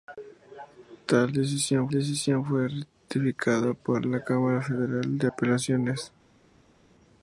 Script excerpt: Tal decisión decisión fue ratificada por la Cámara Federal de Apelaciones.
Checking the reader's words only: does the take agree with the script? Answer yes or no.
yes